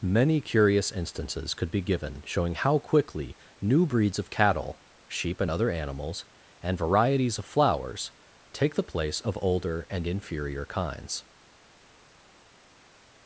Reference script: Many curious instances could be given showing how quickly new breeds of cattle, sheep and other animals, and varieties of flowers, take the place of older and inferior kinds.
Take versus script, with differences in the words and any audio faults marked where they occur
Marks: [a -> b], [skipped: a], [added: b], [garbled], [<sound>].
Many curious instances could be given showing how quickly new breeds of cattle, sheep and other animals, and varieties of flowers, take the place of older and inferior kinds.